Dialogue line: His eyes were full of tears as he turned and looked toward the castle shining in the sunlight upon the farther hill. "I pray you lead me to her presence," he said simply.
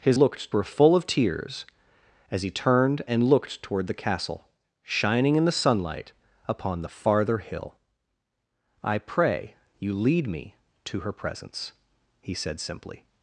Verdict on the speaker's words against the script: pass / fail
fail